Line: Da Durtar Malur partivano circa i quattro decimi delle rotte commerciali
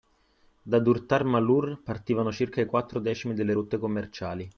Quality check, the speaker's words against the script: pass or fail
pass